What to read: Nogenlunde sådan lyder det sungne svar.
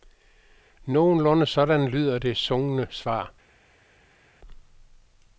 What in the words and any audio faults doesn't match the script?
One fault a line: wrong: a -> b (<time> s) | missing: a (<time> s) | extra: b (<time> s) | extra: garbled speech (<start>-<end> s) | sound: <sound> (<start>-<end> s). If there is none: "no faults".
no faults